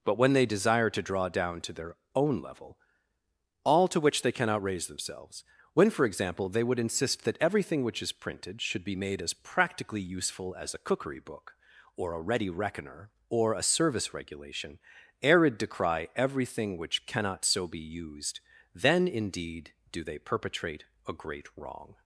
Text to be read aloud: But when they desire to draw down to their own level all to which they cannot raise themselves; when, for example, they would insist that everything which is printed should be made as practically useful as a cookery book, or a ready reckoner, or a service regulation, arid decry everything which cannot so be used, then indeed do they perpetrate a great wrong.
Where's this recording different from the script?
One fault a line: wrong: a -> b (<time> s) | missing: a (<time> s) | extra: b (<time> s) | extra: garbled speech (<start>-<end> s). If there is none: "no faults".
no faults